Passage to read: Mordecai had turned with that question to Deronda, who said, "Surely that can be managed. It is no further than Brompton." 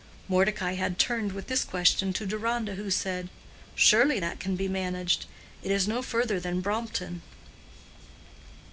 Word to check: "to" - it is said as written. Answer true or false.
true